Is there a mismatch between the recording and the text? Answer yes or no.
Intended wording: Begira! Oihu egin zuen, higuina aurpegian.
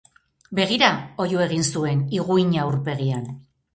no